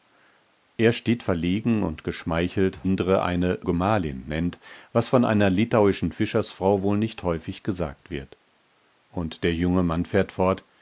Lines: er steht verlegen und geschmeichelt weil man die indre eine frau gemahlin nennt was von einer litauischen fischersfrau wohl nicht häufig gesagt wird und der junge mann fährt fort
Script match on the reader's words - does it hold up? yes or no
no